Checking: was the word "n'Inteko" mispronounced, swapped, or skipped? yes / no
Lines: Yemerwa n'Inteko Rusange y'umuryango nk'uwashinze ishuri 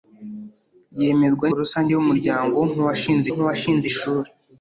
yes